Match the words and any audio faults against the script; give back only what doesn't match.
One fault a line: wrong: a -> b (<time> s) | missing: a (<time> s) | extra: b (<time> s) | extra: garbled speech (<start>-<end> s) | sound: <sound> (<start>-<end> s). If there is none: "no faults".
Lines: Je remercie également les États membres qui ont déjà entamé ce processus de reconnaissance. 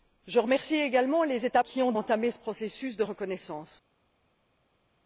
missing: membres (1.6 s)
missing: déjà (1.9 s)